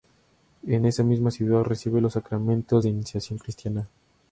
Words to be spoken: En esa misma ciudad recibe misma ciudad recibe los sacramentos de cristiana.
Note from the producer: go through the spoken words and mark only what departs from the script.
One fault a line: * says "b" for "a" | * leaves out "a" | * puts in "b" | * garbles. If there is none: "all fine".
* leaves out "misma ciudad recibe"
* puts in "iniciación"